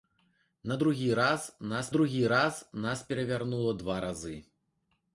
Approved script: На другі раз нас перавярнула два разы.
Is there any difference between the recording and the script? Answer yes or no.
yes